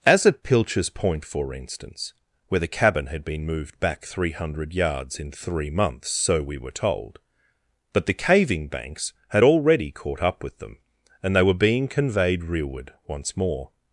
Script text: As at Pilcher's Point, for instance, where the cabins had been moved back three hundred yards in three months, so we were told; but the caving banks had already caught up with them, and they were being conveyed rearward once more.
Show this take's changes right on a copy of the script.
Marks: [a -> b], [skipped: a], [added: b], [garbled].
As at Pilcher's Point, for instance, where the [cabins -> cabin] had been moved back three hundred yards in three months, so we were told; but the caving banks had already caught up with them, and they were being conveyed rearward once more.